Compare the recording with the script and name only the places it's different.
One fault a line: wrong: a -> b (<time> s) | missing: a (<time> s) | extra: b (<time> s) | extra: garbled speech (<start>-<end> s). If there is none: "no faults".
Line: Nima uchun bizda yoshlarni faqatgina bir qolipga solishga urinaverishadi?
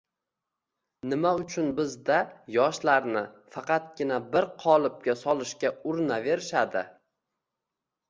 no faults